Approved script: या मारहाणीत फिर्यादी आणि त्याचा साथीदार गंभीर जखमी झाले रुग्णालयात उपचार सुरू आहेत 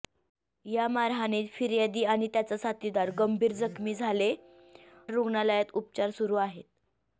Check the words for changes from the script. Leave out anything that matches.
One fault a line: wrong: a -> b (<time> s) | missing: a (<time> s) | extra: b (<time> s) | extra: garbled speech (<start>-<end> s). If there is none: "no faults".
no faults